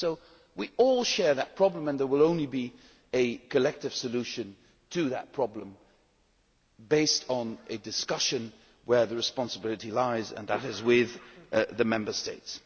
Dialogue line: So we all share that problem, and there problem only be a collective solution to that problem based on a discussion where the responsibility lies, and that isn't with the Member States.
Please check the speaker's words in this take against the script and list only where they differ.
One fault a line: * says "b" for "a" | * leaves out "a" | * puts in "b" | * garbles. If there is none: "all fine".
* says "will" for "problem"
* says "is" for "isn't"